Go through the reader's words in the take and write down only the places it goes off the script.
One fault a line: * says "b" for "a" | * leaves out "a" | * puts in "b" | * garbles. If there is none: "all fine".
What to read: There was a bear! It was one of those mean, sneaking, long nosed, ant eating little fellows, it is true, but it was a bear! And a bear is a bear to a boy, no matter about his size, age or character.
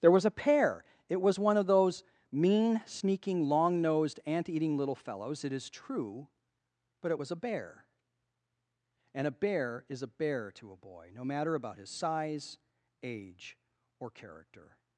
* says "pear" for "bear"